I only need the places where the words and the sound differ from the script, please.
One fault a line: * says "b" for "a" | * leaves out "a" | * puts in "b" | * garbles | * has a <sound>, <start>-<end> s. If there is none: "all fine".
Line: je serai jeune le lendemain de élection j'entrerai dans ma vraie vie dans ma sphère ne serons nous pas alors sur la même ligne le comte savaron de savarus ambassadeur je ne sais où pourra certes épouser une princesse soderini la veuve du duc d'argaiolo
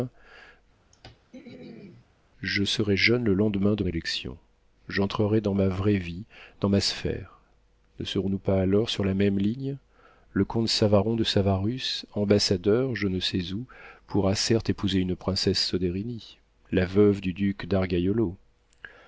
* has a throat clearing, 0.9-2.1 s